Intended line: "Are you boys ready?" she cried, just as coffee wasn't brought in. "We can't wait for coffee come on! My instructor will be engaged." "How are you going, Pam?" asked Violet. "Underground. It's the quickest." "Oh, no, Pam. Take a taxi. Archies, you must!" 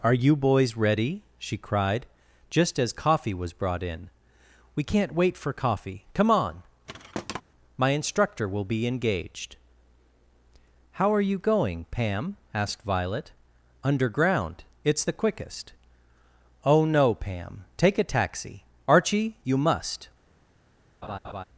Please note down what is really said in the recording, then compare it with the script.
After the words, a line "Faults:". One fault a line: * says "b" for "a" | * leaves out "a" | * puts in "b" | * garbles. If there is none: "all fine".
"Are you boys ready?" she cried, just as coffee was brought in. "We can't wait for coffee come on! My instructor will be engaged." "How are you going, Pam?" asked Violet. "Underground. It's the quickest." "Oh, no, Pam. Take a taxi. Archie, you must!"
Faults:
* says "was" for "wasn't"
* says "Archie" for "Archies"